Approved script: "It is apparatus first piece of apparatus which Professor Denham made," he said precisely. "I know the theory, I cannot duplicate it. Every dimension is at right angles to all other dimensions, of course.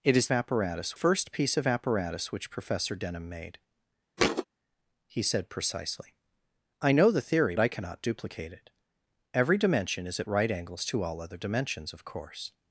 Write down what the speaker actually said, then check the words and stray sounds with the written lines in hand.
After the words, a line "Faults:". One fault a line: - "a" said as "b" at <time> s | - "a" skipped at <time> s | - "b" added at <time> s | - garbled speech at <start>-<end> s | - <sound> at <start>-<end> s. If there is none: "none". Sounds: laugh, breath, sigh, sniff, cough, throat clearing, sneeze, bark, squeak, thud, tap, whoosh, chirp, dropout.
"It is apparatus first piece of apparatus which Professor Denham made," he said precisely. "I know the theory, I cannot duplicate it. Every dimension is at right angles to all other dimensions, of course.
Faults:
- thud at 4.2-4.5 s